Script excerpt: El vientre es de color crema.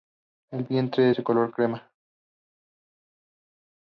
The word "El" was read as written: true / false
true